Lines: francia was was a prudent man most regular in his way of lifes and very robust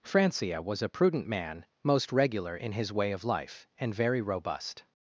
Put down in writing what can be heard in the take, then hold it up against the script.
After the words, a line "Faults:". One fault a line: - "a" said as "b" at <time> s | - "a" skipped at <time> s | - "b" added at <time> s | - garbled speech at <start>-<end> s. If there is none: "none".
francia was a prudent man most regular in his way of life and very robust
Faults:
- "was" skipped at 0.8 s
- "lifes" said as "life" at 3.2 s